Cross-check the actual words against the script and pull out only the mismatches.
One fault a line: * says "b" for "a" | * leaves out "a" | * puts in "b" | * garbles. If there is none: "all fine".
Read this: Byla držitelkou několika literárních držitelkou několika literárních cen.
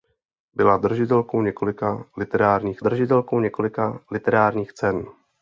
all fine